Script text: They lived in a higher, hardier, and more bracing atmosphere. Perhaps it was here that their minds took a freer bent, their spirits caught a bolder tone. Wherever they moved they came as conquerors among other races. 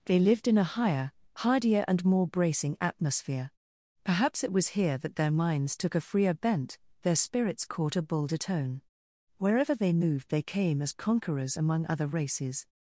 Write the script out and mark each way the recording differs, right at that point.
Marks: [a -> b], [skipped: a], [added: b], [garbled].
They lived in a higher, hardier, and more bracing atmosphere. Perhaps it was here that their minds took a freer bent, their spirits caught a bolder tone. Wherever they moved they came as conquerors among other races.